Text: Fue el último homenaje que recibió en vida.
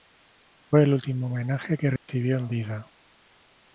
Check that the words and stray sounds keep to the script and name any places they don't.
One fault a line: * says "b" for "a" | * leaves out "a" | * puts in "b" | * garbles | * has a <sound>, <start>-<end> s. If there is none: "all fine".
* has a dropout, 2.0-2.1 s